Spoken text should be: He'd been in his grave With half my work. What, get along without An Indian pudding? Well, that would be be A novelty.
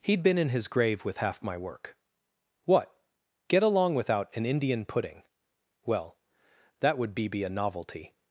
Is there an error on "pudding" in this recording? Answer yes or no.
no